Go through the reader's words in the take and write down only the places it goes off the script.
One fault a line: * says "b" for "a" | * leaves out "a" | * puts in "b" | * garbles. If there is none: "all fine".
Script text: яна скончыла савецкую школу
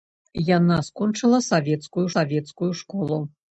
* puts in "савецкую"